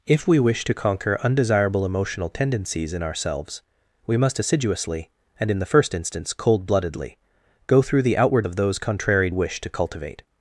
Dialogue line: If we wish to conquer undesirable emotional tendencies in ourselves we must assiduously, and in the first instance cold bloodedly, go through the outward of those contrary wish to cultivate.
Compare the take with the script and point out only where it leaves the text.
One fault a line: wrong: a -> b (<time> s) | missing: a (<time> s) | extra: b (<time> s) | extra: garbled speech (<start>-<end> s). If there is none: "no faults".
no faults